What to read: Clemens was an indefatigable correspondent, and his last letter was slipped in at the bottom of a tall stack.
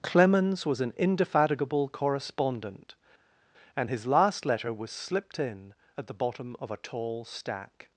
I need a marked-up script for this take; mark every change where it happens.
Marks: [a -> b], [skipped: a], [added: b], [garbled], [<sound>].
Clemens was an indefatigable correspondent, and his last letter was slipped in at the bottom of a tall stack.